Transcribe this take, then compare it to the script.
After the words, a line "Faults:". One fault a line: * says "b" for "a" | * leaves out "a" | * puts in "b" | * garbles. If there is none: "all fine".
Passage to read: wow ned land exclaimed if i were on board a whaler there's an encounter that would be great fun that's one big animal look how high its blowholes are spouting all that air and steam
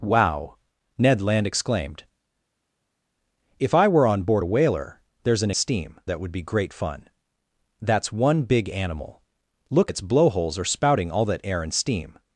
wow ned land exclaimed if i were on board a whaler there's an steam that would be great fun that's one big animal look its blowholes are spouting all that air and steam
Faults:
* says "steam" for "encounter"
* leaves out "how high"